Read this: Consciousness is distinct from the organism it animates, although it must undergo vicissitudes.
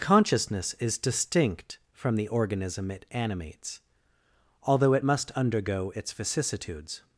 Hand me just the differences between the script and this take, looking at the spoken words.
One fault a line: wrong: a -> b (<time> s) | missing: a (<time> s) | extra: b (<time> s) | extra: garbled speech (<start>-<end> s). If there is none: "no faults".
extra: its (5.9 s)